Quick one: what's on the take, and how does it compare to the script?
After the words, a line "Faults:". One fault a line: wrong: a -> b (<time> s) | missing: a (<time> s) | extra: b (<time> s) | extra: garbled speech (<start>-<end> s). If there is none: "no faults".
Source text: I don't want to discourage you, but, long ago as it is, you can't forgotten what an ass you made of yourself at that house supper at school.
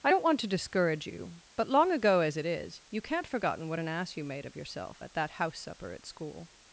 I don't want to discourage you, but, long ago as it is, you can't forgotten what an ass you made of yourself at that house supper at school.
Faults:
no faults